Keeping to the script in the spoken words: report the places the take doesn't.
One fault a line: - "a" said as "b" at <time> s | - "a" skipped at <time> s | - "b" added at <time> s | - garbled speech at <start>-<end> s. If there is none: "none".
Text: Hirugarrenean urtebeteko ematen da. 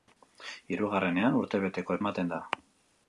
none